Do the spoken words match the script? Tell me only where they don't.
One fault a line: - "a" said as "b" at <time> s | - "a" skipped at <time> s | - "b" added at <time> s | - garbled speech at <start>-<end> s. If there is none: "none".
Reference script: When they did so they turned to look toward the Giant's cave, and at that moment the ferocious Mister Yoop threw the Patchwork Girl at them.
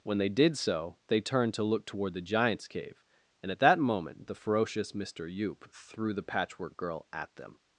none